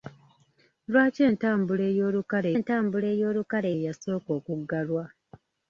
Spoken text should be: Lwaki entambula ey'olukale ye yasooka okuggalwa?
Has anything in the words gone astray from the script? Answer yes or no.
yes